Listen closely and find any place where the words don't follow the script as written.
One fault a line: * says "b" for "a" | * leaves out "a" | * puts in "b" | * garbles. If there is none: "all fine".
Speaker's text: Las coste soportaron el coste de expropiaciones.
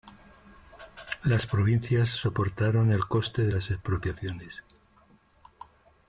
* says "provincias" for "coste"
* puts in "las"